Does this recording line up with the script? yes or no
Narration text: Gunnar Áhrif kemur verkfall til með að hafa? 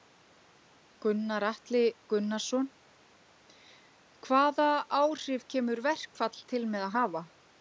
no